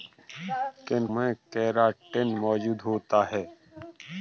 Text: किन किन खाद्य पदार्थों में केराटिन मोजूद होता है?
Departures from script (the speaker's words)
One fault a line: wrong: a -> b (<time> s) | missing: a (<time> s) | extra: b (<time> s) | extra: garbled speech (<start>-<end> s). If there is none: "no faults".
missing: किन खाद्य पदार्थों (1.1 s)